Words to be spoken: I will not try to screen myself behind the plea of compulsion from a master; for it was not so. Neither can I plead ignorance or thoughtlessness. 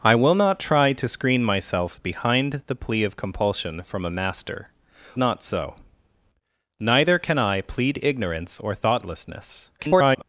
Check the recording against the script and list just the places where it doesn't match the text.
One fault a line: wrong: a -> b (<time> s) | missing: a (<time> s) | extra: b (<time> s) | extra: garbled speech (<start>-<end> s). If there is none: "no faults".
missing: for it was (4.7 s)
extra: garbled speech (9.8-10.2 s)